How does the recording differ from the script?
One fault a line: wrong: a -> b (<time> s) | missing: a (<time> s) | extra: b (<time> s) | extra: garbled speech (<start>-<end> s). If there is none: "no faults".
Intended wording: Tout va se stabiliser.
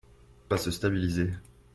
no faults